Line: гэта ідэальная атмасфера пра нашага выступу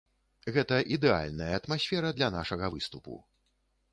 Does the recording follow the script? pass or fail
fail